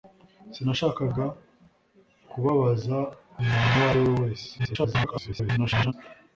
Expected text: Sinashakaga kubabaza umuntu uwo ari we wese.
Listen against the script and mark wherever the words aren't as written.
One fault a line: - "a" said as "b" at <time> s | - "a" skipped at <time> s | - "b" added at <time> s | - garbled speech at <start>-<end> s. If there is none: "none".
- garbled speech at 4.6-5.9 s